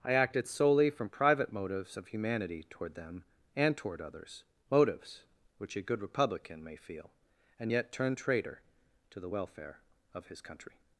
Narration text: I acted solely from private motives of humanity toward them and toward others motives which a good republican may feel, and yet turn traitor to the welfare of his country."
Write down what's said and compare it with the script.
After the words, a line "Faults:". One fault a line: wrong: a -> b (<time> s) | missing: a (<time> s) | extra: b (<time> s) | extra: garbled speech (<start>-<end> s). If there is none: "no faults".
I acted solely from private motives of humanity toward them and toward others motives which a good republican may feel, and yet turn traitor to the welfare of his country."
Faults:
no faults